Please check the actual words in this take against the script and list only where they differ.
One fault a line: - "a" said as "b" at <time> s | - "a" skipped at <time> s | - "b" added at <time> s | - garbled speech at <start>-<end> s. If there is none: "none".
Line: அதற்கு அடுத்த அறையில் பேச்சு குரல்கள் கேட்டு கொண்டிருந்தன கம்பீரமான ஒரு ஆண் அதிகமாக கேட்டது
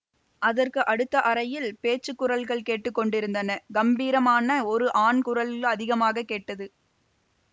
- "குரல்" added at 5.2 s